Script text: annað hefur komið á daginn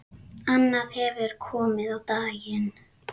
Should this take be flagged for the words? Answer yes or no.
no